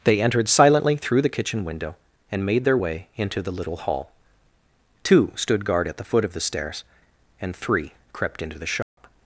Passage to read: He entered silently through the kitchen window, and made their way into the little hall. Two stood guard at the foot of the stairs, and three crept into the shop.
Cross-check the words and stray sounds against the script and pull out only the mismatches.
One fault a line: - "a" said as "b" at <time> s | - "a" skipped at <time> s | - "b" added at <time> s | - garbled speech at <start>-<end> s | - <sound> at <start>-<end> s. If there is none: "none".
- "He" said as "They" at 0.0 s
- dropout at 8.8-9.0 s